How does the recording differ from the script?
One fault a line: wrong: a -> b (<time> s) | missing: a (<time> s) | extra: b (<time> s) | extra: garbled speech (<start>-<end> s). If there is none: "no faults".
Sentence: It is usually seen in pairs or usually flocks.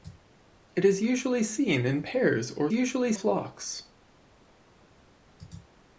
no faults